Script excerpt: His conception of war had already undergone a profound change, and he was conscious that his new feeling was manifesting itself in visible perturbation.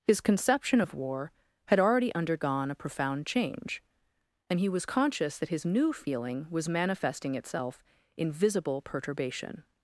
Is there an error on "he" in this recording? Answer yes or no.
no